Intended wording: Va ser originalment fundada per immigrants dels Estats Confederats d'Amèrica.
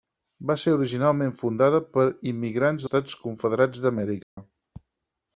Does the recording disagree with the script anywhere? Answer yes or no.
yes